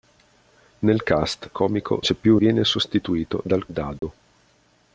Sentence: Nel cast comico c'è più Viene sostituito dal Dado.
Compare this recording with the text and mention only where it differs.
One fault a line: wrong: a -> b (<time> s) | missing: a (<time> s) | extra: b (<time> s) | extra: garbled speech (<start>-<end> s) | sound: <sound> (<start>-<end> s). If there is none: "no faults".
sound: dropout (4.0-4.0 s)